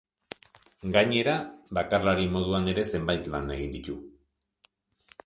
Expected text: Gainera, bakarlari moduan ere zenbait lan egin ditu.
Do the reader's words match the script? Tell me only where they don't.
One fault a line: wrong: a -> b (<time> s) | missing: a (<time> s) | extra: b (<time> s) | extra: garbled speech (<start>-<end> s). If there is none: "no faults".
no faults